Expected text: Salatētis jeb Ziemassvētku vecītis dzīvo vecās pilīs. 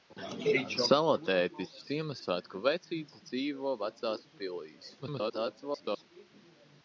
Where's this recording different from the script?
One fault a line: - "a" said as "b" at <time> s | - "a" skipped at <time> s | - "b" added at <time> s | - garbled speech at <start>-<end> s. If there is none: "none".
- "jeb" skipped at 1.8 s
- garbled speech at 5.0-6.0 s